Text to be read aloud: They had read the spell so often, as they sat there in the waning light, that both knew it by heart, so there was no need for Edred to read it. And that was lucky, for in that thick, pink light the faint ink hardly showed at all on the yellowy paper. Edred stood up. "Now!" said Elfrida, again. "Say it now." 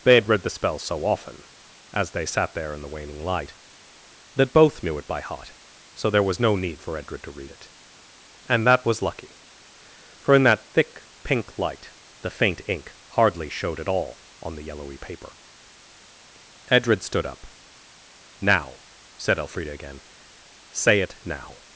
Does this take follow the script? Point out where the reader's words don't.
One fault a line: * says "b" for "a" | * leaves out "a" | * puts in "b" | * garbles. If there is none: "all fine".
all fine